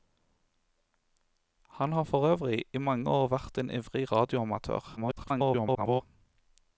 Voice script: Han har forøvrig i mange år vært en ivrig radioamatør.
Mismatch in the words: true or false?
true